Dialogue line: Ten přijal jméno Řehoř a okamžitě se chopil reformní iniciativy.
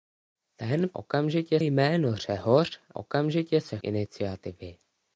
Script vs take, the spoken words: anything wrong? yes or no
yes